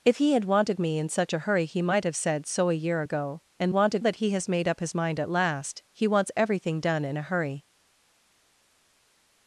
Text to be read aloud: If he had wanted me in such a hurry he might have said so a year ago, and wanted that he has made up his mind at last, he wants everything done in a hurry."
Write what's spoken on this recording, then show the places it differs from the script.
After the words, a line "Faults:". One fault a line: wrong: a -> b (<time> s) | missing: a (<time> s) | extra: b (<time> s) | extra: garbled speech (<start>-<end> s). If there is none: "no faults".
If he had wanted me in such a hurry he might have said so a year ago, and wanted that he has made up his mind at last, he wants everything done in a hurry."
Faults:
no faults